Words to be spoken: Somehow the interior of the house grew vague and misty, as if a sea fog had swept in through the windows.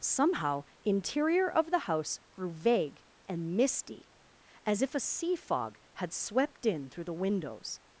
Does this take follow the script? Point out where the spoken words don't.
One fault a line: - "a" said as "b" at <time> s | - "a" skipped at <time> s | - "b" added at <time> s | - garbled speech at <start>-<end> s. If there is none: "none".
- "the" skipped at 0.6 s